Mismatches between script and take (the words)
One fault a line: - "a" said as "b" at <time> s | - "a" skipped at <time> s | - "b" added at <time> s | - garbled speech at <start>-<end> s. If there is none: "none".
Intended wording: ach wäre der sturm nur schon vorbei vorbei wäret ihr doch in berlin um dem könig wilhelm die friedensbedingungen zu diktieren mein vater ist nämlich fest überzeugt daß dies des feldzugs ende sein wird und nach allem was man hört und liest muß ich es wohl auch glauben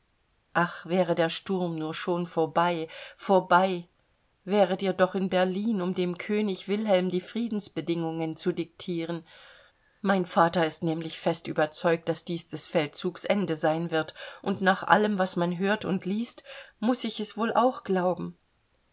none